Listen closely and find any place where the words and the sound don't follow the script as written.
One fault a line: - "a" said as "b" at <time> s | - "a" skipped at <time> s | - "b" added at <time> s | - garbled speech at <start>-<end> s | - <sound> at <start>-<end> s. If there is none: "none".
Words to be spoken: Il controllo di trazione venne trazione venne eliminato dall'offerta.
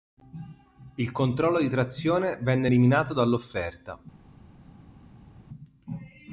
- "trazione venne" skipped at 2.7 s